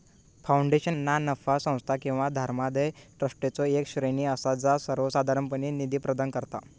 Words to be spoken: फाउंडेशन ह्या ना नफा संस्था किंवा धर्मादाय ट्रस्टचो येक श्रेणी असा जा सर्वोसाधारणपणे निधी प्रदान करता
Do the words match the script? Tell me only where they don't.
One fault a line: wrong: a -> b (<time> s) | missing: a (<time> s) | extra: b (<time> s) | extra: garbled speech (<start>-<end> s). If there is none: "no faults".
missing: ह्या (0.9 s)